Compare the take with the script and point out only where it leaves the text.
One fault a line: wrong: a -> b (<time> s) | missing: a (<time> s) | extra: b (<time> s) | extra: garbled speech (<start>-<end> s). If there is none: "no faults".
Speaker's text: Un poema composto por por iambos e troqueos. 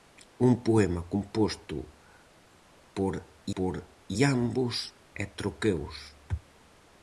no faults